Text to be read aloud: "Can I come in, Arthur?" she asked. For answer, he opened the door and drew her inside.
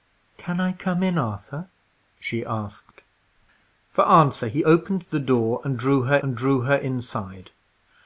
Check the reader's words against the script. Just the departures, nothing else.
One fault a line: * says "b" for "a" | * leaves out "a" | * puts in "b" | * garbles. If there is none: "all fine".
* puts in "and drew her"